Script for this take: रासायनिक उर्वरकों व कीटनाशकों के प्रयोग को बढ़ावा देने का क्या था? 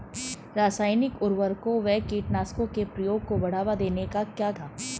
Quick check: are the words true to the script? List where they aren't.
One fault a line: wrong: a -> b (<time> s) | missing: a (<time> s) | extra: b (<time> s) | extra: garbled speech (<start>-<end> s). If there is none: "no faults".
no faults